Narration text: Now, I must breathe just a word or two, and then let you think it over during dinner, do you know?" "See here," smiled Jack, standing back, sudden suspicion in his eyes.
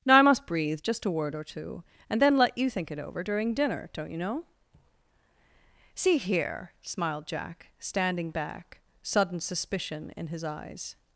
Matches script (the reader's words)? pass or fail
fail